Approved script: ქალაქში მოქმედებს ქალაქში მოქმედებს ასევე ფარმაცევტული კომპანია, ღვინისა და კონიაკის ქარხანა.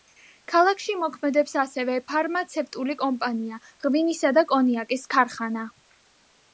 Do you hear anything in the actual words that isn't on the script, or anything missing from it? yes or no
yes